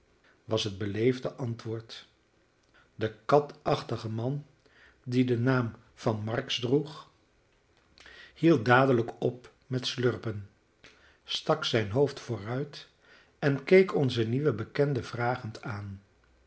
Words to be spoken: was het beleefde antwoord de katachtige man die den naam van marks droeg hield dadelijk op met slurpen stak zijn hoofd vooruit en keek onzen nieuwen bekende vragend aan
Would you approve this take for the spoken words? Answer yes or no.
yes